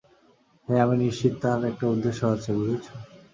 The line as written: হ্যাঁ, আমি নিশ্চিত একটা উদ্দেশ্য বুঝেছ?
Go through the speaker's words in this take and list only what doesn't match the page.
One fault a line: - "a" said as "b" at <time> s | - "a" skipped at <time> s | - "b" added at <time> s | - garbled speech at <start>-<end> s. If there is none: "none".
- "তার" added at 1.4 s
- "আছে" added at 2.2 s